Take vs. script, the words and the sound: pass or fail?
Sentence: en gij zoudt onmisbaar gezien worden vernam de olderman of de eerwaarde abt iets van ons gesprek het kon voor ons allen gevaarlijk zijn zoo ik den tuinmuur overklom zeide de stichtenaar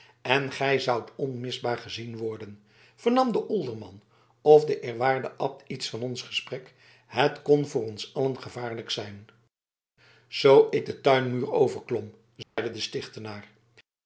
fail